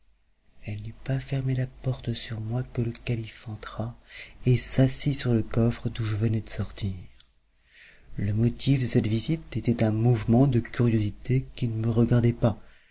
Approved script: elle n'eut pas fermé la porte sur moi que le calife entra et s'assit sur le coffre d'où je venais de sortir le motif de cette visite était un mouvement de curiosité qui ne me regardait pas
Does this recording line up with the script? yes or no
yes